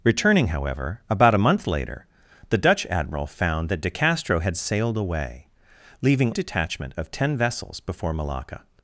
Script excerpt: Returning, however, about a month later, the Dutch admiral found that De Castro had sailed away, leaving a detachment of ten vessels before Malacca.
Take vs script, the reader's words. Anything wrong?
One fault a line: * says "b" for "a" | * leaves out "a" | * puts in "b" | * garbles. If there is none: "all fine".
all fine